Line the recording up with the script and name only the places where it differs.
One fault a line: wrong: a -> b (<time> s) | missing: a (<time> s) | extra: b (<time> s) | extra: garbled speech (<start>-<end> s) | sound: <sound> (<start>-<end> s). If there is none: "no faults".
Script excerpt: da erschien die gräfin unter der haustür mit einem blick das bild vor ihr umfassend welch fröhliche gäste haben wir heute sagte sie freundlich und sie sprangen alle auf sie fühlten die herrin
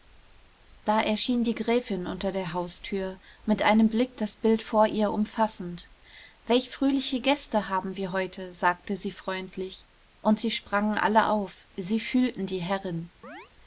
sound: chirp (13.2-13.5 s)